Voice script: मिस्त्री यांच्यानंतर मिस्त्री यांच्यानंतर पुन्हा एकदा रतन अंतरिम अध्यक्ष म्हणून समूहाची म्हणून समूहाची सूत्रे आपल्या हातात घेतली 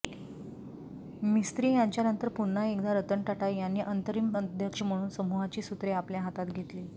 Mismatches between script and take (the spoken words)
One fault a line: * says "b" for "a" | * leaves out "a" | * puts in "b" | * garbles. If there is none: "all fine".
* leaves out "मिस्त्री यांच्यानंतर"
* puts in "टाटा यांनी"
* leaves out "म्हणून समूहाची"